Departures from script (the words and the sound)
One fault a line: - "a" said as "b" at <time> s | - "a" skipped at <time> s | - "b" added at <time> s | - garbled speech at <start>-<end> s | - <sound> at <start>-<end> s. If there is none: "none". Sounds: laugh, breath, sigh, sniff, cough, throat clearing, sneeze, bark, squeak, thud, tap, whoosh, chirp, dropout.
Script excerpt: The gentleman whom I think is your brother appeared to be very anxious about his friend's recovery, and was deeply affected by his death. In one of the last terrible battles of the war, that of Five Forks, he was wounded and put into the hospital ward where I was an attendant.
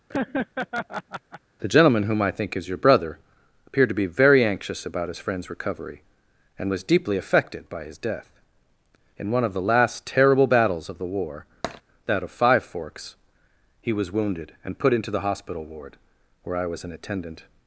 - laugh at 0.1-1.4 s
- tap at 11.6-11.8 s